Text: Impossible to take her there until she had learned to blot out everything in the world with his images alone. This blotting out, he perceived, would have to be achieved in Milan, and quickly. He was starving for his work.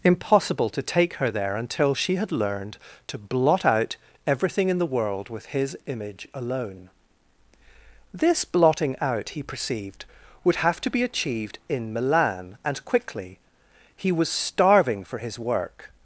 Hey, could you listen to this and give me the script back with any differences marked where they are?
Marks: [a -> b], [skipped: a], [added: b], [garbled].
Impossible to take her there until she had learned to blot out everything in the world with his [images -> image] alone. This blotting out, he perceived, would have to be achieved in Milan, and quickly. He was starving for his work.